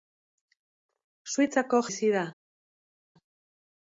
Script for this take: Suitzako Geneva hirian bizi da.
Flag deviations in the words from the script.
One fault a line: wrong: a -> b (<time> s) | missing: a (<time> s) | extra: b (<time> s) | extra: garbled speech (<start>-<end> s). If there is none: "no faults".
missing: Geneva hirian (1.8 s)